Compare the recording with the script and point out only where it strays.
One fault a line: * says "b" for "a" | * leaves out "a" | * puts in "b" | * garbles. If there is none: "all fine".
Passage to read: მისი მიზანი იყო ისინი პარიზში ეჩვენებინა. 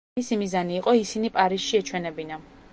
all fine